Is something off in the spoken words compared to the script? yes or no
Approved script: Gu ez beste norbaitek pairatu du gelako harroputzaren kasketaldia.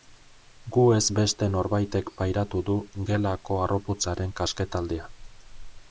no